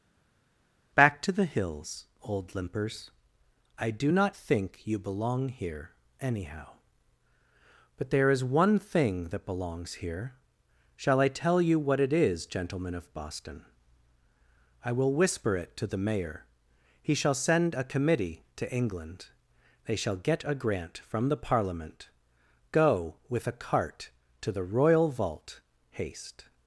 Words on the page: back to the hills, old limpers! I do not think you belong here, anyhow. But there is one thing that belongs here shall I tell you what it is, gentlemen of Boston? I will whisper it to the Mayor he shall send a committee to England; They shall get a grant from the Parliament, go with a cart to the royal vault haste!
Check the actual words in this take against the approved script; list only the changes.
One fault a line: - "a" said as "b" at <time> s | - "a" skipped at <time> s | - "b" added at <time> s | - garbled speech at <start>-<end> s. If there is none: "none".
none